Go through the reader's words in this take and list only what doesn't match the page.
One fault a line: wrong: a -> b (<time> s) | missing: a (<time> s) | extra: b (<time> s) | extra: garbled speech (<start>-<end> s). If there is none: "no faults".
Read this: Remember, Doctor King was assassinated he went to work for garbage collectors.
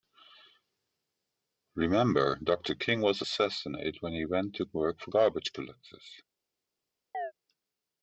extra: when (4.0 s)